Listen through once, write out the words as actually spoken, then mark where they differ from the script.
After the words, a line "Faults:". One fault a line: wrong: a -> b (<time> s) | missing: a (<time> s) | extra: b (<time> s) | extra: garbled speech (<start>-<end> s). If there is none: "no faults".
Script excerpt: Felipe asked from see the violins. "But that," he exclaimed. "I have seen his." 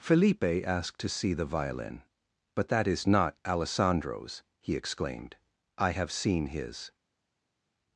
Felipe asked to see the violin. "But that is not Alessandro's," he exclaimed. "I have seen his."
Faults:
wrong: from -> to (1.0 s)
wrong: violins -> violin (1.4 s)
extra: is not Alessandro's (2.9 s)